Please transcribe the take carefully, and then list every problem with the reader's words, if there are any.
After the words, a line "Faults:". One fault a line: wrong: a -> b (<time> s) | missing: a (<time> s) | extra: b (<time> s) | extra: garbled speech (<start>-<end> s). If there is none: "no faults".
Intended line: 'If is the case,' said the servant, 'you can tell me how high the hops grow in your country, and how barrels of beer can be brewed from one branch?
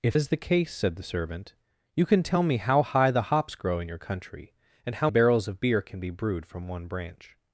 'If is the case,' said the servant, 'you can tell me how high the hops grow in your country, and how barrels of beer can be brewed from one branch?
Faults:
no faults